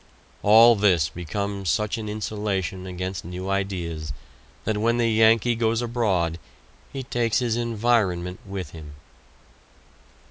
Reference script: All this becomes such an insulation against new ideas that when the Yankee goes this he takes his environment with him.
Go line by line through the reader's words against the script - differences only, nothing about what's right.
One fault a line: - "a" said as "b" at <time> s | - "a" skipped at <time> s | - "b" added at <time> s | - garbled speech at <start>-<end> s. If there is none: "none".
- "this" said as "abroad" at 5.8 s